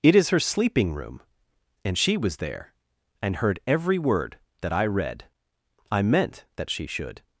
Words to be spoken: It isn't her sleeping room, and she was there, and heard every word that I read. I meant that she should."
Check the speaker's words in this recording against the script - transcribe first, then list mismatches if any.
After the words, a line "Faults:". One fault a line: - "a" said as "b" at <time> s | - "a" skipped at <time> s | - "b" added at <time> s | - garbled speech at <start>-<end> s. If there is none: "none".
It is her sleeping room, and she was there, and heard every word that I read. I meant that she should."
Faults:
- "isn't" said as "is" at 0.1 s